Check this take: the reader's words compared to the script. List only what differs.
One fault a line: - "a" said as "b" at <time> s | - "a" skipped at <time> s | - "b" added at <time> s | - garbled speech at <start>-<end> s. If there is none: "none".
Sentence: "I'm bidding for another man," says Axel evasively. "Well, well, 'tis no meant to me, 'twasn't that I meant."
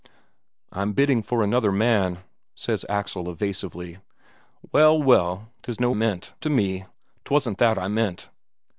none